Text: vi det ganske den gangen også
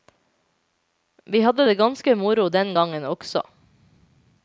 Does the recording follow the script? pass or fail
fail